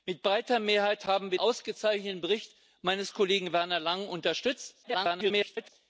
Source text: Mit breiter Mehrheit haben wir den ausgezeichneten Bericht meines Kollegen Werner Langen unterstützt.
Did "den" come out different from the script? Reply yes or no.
yes